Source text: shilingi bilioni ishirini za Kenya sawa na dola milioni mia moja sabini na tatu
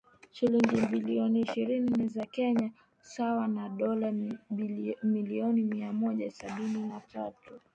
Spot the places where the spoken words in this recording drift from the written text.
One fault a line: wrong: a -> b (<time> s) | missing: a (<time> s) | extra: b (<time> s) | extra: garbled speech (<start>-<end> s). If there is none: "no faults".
no faults